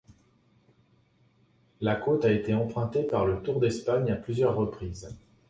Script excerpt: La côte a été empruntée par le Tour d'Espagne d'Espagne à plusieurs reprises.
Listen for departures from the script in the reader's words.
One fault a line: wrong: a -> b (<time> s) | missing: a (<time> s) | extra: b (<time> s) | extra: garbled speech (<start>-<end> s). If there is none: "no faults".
missing: d'Espagne (4.1 s)